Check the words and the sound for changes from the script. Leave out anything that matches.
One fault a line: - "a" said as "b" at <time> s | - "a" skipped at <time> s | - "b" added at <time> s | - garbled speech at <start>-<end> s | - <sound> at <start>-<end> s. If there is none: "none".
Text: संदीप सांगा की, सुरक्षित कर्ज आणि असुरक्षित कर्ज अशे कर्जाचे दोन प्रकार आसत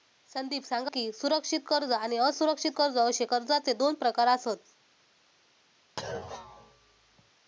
- thud at 6.0-7.3 s